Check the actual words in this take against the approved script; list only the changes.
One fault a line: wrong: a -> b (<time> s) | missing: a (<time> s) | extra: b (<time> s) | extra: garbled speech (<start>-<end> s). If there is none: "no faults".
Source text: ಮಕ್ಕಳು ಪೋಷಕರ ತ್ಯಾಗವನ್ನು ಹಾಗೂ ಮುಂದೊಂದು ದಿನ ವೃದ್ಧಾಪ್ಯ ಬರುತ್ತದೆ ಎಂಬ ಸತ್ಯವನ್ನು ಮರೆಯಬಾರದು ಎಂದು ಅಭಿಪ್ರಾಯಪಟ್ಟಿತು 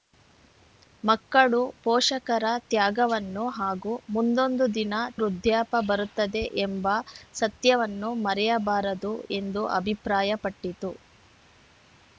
no faults